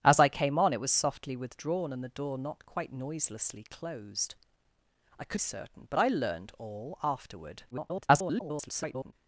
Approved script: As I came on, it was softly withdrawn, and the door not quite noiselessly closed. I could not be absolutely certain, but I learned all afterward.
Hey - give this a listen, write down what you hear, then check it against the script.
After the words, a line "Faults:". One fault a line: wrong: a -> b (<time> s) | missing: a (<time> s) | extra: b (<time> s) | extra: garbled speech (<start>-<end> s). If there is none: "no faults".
As I came on, it was softly withdrawn, and the door not quite noiselessly closed. I could certain, but I learned all afterward. [garbled]
Faults:
missing: not be absolutely (5.4 s)
extra: garbled speech (7.7-9.1 s)